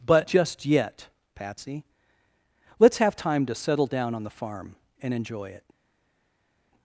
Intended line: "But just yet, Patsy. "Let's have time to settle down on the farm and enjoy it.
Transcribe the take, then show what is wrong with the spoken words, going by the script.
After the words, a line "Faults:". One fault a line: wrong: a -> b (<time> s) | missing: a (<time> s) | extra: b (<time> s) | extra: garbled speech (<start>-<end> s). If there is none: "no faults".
"But just yet, Patsy. "Let's have time to settle down on the farm and enjoy it.
Faults:
no faults